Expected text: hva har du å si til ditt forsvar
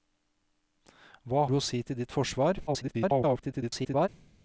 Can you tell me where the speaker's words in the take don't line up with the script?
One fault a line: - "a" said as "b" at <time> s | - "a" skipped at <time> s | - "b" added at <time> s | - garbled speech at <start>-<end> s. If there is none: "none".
- "har" skipped at 1.4 s
- garbled speech at 2.7-4.1 s